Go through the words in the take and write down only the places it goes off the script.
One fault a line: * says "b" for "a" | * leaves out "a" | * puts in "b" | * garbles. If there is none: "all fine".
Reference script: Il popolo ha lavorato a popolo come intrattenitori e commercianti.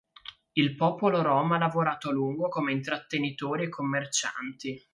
* puts in "rom"
* says "lungo" for "popolo"